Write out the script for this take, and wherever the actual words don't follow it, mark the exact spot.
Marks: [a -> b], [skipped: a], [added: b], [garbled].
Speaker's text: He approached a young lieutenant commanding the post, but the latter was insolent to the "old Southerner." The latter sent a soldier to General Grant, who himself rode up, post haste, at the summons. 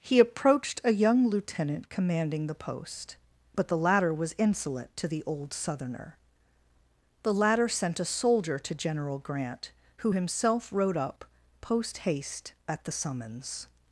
He approached a young lieutenant commanding the post, but the latter was insolent to the "old Southerner." The latter sent a soldier to General Grant, who himself rode up, post haste, at the summons.